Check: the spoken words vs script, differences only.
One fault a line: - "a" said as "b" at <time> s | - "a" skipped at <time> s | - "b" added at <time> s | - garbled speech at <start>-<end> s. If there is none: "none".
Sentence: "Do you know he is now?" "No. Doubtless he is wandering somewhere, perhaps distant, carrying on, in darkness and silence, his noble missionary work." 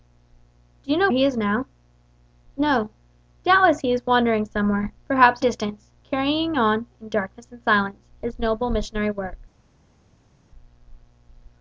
none